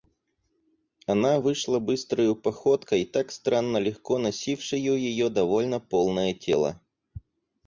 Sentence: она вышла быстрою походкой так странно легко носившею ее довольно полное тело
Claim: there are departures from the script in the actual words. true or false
false